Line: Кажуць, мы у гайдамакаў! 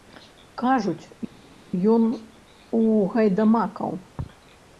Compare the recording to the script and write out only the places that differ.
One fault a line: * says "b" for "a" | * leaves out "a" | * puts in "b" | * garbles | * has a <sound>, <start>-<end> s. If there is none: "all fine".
* says "ён" for "мы"